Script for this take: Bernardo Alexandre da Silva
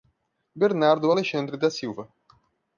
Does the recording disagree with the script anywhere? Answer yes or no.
no